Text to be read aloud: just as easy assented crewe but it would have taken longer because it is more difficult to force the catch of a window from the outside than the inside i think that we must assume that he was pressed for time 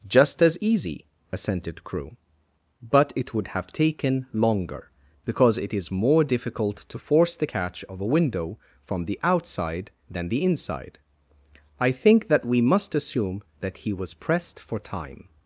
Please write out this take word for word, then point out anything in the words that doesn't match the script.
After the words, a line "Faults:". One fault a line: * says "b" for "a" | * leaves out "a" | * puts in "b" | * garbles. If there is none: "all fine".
just as easy assented crewe but it would have taken longer because it is more difficult to force the catch of a window from the outside than the inside i think that we must assume that he was pressed for time
Faults:
all fine